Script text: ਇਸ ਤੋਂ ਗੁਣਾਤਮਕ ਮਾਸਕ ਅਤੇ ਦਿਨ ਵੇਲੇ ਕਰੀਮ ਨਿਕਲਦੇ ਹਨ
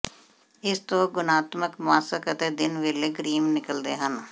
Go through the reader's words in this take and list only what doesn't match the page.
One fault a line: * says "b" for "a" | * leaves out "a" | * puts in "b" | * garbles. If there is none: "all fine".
all fine